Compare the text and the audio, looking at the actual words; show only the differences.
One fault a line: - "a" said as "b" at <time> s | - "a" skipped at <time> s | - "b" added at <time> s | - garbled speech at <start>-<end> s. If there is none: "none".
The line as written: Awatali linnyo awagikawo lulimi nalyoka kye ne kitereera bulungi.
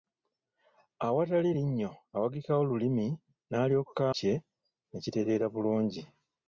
none